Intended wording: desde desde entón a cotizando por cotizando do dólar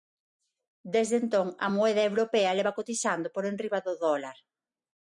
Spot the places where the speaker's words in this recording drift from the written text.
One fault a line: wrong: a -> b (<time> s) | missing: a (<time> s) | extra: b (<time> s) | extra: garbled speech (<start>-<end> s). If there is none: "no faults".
missing: desde (1.1 s)
extra: moeda europea leva (1.7 s)
wrong: cotizando -> enriba (3.5 s)